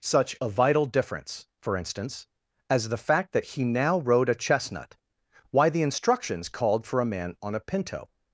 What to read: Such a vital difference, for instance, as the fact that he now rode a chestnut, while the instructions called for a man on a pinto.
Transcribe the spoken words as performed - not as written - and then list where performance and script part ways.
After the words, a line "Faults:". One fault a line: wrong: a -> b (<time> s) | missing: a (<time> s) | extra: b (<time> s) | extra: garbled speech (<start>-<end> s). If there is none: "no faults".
Such a vital difference, for instance, as the fact that he now rode a chestnut, why the instructions called for a man on a pinto.
Faults:
wrong: while -> why (5.5 s)